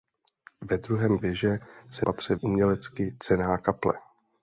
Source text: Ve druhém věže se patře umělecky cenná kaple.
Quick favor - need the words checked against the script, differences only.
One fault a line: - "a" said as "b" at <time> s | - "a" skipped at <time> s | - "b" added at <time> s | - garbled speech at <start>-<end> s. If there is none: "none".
none